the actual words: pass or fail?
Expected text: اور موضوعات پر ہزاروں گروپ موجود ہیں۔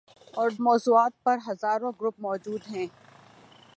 pass